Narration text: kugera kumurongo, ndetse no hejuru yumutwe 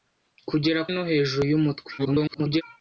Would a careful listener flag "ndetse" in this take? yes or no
yes